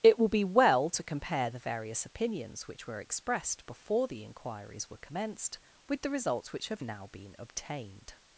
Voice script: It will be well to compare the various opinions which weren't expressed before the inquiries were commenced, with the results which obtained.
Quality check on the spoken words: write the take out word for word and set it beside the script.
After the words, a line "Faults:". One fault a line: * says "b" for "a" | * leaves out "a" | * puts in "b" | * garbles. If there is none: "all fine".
It will be well to compare the various opinions which were expressed before the inquiries were commenced, with the results which have now been obtained.
Faults:
* says "were" for "weren't"
* puts in "have now been"